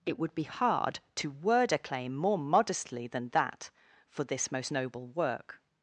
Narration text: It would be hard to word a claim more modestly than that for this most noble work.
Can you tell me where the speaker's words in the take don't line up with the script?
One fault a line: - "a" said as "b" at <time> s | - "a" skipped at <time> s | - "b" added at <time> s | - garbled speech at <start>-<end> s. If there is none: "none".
none